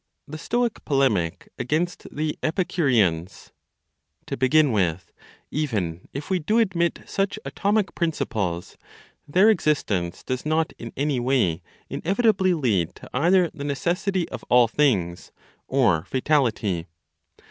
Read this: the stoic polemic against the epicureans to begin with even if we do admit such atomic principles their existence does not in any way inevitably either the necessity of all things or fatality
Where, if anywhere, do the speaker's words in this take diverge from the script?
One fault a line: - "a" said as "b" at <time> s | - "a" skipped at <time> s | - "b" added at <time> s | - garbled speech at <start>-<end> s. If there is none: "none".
- "lead to" added at 12.6 s